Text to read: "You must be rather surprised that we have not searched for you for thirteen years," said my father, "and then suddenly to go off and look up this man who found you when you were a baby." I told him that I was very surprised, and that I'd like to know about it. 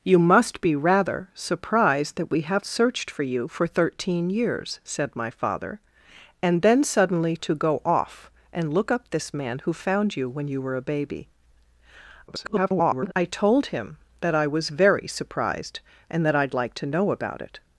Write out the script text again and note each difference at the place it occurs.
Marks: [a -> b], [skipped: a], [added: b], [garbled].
"You must be rather surprised that we have [skipped: not] searched for you for thirteen years," said my father, "and then suddenly to go off and look up this man who found you when you were a baby." [garbled] I told him that I was very surprised, and that I'd like to know about it.